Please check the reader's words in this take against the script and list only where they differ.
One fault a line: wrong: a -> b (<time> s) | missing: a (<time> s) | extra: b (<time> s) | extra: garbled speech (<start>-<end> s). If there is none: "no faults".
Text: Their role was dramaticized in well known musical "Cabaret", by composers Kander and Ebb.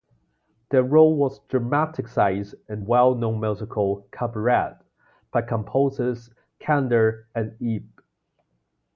no faults